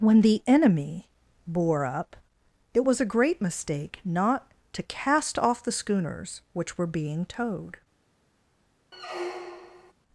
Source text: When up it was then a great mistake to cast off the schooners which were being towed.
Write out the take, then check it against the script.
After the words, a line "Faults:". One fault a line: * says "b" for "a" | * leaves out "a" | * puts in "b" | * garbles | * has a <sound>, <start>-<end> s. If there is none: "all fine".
When the enemy bore up it was a great mistake not to cast off the schooners which were being towed.
Faults:
* puts in "the enemy bore"
* leaves out "then"
* puts in "not"
* has a squeak, 8.9-9.9 s